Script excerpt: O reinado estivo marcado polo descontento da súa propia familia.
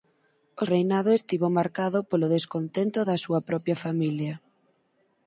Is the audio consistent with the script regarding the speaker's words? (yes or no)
yes